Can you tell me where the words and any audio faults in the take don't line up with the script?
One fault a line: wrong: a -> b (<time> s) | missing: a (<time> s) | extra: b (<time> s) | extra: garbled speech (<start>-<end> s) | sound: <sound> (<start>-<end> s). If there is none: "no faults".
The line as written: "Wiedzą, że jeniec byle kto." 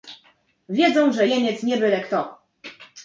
extra: nie (1.6 s)